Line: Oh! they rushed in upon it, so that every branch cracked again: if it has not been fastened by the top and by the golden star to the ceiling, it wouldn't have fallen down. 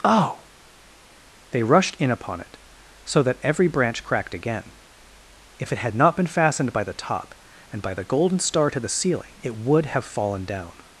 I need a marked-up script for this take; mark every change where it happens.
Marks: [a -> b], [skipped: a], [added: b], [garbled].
Oh! they rushed in upon it, so that every branch cracked again: if it [has -> had] not been fastened by the top and by the golden star to the ceiling, it [wouldn't -> would] have fallen down.